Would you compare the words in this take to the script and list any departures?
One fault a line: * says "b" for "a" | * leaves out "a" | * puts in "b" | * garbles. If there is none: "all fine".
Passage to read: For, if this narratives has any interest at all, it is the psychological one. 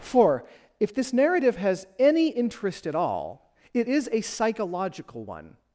* says "narrative" for "narratives"
* says "a" for "the"